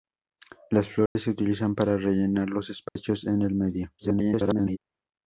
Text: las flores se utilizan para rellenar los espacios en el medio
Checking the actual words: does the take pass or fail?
fail